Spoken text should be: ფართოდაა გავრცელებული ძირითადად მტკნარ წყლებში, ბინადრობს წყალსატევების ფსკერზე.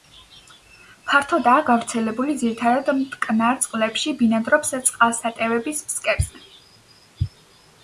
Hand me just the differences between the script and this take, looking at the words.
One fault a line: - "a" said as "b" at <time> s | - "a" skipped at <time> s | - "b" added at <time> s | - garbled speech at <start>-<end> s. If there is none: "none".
none